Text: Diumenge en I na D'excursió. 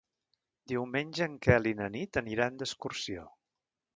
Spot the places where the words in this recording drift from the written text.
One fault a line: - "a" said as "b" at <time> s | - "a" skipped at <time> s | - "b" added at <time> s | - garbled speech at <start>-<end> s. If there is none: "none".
- "Quel" added at 1.5 s
- "Nit aniran" added at 2.0 s